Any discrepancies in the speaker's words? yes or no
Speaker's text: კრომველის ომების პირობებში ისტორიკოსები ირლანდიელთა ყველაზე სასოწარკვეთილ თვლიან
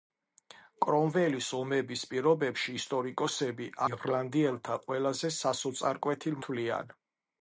no